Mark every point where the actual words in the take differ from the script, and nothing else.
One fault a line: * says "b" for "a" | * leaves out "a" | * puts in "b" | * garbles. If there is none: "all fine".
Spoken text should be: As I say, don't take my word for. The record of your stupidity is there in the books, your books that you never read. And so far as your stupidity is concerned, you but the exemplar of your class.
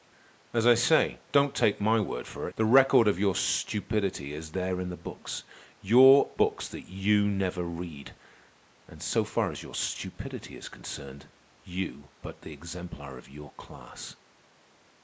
all fine